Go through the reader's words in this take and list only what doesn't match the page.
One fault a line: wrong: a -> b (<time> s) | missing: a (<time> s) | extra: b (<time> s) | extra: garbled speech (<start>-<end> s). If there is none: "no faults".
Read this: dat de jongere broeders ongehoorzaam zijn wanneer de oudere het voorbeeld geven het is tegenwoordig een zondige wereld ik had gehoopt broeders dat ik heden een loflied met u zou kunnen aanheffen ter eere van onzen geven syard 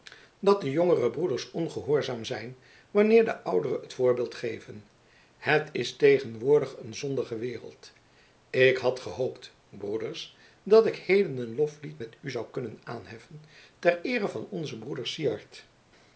wrong: geven -> broeder (14.8 s)